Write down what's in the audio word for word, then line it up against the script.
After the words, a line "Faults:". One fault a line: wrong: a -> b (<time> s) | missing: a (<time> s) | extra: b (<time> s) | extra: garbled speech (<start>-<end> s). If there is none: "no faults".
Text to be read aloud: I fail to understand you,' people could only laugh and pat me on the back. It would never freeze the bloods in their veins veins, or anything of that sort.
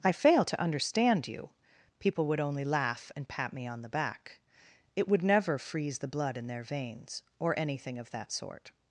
I fail to understand you,' people would only laugh and pat me on the back. It would never freeze the blood in their veins, or anything of that sort.
Faults:
wrong: could -> would (2.3 s)
wrong: bloods -> blood (6.1 s)
missing: veins (7.2 s)